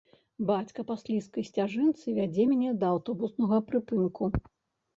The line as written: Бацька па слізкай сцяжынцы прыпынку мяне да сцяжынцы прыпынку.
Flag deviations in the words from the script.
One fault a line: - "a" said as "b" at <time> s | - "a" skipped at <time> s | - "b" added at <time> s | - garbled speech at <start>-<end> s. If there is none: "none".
- "прыпынку" said as "вядзе" at 2.2 s
- "сцяжынцы" said as "аўтобуснага" at 3.0 s